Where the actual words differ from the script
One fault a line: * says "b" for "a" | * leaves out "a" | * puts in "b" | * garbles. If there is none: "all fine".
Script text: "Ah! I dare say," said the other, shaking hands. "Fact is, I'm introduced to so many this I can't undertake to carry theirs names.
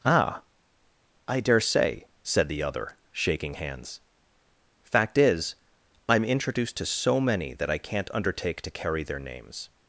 * says "that" for "this"
* says "their" for "theirs"